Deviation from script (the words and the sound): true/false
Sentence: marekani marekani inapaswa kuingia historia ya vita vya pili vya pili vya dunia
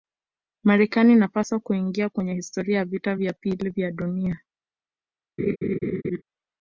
true